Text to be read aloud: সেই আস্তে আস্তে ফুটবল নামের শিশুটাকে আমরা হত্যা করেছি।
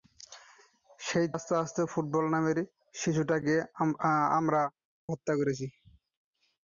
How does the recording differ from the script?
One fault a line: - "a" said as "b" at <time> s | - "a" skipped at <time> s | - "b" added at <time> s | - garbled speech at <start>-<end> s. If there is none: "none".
none